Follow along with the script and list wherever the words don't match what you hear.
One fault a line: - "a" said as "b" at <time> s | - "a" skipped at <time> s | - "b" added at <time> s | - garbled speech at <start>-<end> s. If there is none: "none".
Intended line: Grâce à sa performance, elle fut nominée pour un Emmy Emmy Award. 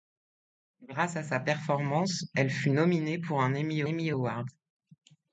none